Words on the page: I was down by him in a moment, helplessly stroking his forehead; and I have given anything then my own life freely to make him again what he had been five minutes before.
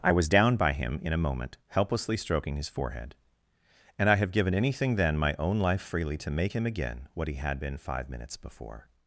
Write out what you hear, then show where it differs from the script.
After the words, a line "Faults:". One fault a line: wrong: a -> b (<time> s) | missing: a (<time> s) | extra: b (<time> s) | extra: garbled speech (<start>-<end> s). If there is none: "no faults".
I was down by him in a moment, helplessly stroking his forehead; and I have given anything then my own life freely to make him again what he had been five minutes before.
Faults:
no faults